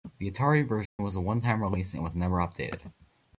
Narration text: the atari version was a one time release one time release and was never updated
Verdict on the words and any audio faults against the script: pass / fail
fail